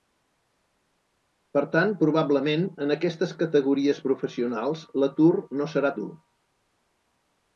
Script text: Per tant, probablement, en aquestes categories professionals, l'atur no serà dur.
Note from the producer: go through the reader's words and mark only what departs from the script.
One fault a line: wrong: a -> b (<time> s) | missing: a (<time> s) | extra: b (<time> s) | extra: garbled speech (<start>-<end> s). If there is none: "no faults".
no faults